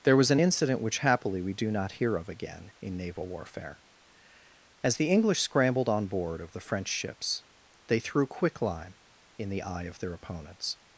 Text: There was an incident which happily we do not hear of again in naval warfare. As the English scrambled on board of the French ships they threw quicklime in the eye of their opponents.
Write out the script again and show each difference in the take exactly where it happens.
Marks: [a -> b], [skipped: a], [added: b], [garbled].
There was an incident which happily we do not hear of again in naval warfare. As the English scrambled on board of the French ships they threw quicklime in the eye of their opponents.